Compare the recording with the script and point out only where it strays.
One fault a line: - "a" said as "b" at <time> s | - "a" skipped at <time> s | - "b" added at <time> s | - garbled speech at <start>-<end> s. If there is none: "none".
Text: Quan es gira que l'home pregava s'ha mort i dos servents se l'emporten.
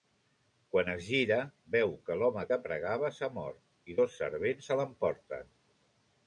- "veu" added at 1.7 s
- "que" added at 2.5 s